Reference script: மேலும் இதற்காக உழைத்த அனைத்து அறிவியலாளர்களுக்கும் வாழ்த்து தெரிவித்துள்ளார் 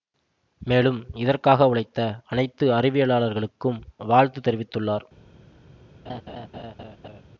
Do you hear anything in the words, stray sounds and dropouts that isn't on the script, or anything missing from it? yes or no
yes